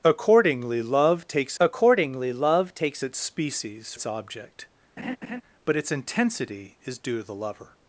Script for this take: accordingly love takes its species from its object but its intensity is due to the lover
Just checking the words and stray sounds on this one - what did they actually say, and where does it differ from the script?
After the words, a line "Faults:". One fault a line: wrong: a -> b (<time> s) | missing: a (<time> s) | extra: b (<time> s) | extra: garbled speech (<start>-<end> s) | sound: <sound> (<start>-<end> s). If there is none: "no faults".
accordingly love takes accordingly love takes its species its object but its intensity is due to the lover
Faults:
extra: accordingly love takes (1.6 s)
missing: from (3.9 s)
sound: laugh (5.0-5.4 s)